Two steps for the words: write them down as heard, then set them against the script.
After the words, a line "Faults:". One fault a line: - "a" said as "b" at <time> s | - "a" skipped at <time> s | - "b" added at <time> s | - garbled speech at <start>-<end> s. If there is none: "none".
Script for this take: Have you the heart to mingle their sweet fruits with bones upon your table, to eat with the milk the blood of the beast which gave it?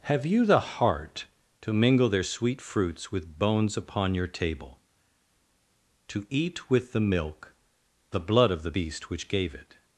Have you the heart to mingle their sweet fruits with bones upon your table, to eat with the milk the blood of the beast which gave it?
Faults:
none